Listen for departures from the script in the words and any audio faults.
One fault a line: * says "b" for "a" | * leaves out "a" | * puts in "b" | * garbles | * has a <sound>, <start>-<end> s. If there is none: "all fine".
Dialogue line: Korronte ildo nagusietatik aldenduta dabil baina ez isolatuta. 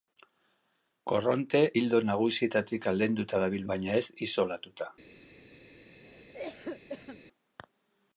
* has a cough, 6.0-7.2 s